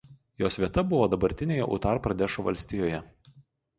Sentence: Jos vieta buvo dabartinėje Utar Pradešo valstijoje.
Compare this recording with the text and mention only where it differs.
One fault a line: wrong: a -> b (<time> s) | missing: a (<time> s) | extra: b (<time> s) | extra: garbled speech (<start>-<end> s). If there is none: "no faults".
no faults